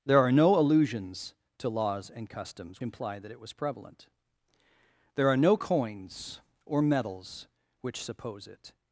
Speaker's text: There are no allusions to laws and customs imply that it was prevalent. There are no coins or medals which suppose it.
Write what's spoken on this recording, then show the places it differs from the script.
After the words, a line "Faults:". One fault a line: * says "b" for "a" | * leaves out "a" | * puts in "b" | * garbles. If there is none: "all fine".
There are no allusions to laws and customs imply that it was prevalent. There are no coins or medals which suppose it.
Faults:
all fine